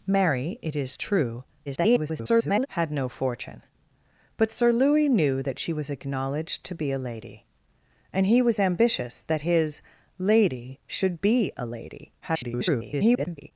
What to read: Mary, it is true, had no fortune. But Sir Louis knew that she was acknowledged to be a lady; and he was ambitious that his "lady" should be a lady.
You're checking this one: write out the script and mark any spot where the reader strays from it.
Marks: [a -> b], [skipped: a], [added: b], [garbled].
Mary, it is true, [garbled] had no fortune. But Sir Louis knew that she was acknowledged to be a lady; and he was ambitious that his "lady" should be a lady. [garbled]